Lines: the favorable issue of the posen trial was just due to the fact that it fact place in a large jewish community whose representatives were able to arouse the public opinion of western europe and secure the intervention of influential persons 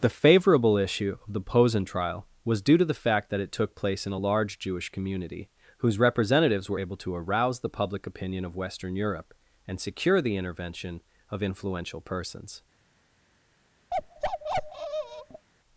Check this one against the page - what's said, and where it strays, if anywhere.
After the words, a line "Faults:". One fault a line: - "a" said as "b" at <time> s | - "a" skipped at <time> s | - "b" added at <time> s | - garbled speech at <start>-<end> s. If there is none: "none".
the favorable issue of the posen trial was due to the fact that it took place in a large jewish community whose representatives were able to arouse the public opinion of western europe and secure the intervention of influential persons
Faults:
- "just" skipped at 2.6 s
- "fact" said as "took" at 3.5 s